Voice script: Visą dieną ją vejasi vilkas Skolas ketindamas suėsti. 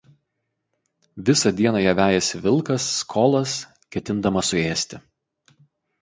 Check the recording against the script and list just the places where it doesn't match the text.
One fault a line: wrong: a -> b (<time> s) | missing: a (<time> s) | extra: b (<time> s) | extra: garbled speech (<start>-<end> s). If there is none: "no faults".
no faults